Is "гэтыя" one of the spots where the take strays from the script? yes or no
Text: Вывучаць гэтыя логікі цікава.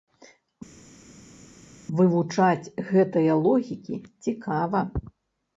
no